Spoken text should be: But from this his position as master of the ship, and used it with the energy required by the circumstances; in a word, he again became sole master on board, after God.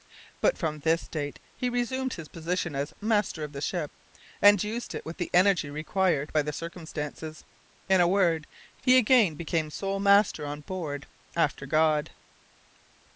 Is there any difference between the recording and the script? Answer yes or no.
yes